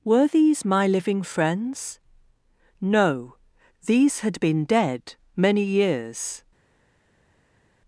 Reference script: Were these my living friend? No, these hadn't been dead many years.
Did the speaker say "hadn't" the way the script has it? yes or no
no